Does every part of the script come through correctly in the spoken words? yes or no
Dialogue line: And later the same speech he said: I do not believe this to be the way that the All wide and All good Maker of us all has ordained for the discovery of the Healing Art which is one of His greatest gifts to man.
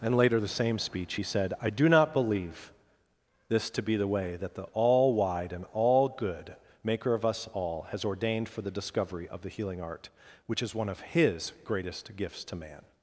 yes